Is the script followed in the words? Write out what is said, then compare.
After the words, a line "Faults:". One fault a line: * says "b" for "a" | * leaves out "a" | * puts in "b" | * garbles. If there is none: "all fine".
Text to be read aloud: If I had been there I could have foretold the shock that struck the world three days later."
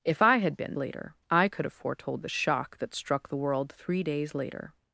If I had been later I could have foretold the shock that struck the world three days later."
Faults:
* says "later" for "there"